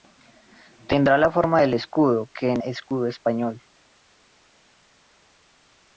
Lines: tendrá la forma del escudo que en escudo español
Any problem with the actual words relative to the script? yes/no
no